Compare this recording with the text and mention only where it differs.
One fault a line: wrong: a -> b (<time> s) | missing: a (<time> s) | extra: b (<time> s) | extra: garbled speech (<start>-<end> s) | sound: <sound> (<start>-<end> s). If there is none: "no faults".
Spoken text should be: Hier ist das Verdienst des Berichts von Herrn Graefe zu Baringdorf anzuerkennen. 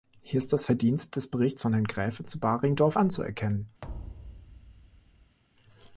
sound: thud (3.8-5.4 s)